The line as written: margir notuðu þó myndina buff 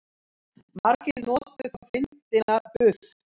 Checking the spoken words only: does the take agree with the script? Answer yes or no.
yes